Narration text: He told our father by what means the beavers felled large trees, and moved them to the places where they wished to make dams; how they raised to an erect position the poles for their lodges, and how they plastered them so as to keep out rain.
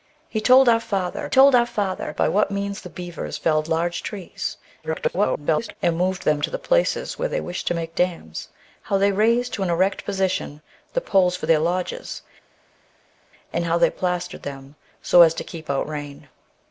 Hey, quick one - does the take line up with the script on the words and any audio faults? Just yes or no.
no